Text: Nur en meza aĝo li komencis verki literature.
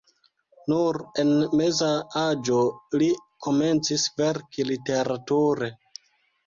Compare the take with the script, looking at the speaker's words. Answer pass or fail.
pass